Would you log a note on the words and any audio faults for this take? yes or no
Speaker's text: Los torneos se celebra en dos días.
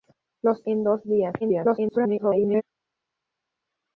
yes